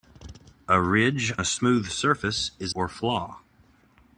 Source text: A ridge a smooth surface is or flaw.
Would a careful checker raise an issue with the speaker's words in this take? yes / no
no